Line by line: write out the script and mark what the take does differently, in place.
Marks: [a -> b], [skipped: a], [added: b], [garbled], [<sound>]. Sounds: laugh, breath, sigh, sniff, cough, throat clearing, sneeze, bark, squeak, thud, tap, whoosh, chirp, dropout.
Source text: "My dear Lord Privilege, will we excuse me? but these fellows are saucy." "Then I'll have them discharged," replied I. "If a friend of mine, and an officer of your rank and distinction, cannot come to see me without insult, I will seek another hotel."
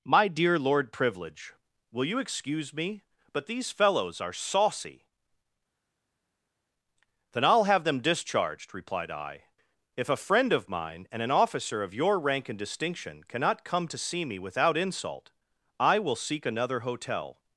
"My dear Lord Privilege, will [we -> you] excuse me? but these fellows are saucy." "Then I'll have them discharged," replied I. "If a friend of mine, and an officer of your rank and distinction, cannot come to see me without insult, I will seek another hotel."